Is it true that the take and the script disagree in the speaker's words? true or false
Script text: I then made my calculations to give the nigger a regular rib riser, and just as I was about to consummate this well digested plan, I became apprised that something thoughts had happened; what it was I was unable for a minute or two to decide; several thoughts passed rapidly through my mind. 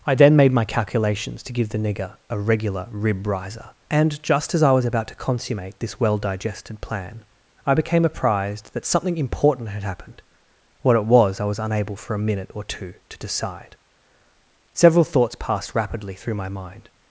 true